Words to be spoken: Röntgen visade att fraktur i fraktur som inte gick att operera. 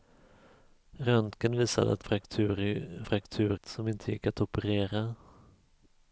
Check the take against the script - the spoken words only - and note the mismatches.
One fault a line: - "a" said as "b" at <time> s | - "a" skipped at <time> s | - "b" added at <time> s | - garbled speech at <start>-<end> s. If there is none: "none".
none